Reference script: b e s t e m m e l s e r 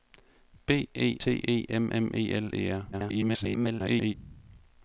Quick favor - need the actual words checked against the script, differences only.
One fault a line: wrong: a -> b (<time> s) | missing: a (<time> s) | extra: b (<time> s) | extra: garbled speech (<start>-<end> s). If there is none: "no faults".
missing: s (1.2 s)
missing: s (2.5 s)
extra: garbled speech (2.9-4.1 s)